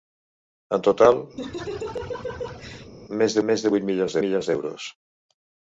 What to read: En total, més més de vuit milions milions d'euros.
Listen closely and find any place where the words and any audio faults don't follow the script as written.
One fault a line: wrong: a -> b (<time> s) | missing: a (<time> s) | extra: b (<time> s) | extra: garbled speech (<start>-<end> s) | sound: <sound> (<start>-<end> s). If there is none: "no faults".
sound: laugh (1.4-2.9 s)